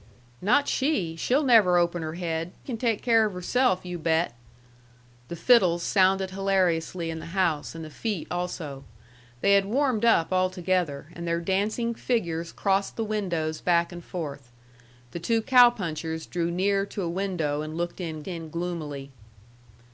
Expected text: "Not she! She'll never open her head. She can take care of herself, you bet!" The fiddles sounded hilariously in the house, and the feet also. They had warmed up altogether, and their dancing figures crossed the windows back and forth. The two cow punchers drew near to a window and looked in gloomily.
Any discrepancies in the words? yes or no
yes